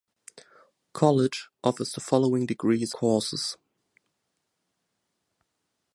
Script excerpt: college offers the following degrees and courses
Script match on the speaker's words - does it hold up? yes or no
no